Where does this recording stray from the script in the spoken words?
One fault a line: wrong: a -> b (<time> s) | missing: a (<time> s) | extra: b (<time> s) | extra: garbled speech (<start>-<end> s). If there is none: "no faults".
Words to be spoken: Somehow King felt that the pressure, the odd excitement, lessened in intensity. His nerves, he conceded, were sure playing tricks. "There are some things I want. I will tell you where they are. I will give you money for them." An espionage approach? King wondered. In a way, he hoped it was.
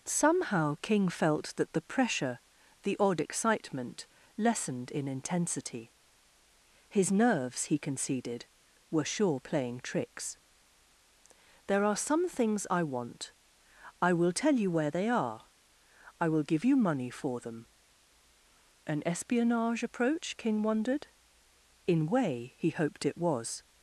missing: a (22.1 s)